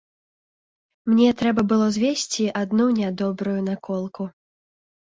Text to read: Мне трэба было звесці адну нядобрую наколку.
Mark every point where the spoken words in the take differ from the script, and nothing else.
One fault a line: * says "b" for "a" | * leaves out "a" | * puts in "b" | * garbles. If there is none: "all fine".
all fine